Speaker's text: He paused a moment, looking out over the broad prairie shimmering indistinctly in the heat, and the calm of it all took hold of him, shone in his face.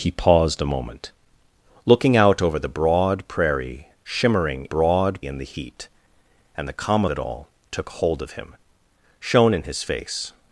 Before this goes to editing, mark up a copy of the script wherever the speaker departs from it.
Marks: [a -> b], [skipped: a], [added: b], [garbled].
He paused a moment, looking out over the broad prairie shimmering [indistinctly -> broad] in the heat, and the calm [skipped: of] it all took hold of him, shone in his face.